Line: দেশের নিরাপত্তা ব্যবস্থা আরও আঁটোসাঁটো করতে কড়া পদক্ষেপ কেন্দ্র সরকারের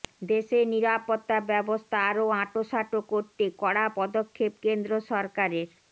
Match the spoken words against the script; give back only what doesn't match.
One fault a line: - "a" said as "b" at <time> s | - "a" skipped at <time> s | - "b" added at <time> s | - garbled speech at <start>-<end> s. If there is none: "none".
none